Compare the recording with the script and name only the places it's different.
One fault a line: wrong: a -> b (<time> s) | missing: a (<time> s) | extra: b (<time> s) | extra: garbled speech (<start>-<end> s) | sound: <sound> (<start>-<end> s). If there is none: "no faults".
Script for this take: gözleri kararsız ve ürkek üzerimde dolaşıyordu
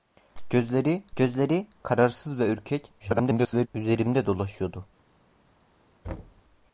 extra: gözleri (1.2 s)
extra: garbled speech (3.0-3.7 s)
sound: thud (6.0-6.4 s)